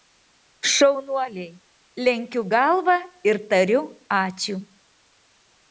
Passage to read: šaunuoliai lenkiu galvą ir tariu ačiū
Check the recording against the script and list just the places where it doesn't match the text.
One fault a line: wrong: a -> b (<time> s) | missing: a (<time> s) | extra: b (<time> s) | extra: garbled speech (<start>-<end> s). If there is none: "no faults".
no faults